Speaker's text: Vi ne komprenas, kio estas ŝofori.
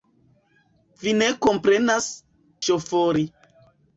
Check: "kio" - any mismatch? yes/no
yes